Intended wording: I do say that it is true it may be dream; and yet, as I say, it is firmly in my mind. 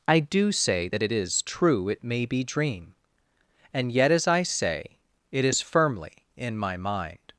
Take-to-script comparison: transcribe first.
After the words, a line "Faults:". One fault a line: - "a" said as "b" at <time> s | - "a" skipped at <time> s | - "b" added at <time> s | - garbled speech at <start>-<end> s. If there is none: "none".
I do say that it is true it may be dream; and yet, as I say, it is firmly in my mind.
Faults:
none